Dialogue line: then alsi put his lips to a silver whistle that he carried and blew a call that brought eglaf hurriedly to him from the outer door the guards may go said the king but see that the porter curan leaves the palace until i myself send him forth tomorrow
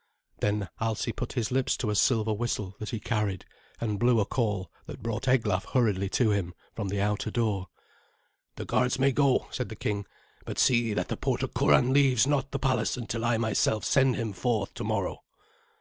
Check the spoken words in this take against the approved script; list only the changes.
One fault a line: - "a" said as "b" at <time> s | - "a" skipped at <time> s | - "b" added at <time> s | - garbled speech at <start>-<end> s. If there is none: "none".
- "not" added at 12.3 s